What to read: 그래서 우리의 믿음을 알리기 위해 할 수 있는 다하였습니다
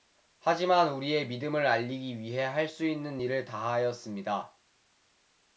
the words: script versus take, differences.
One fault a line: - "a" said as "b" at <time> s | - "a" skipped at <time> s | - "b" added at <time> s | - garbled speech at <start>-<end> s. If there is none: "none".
- "그래서" said as "하지만" at 0.4 s
- "일을" added at 3.2 s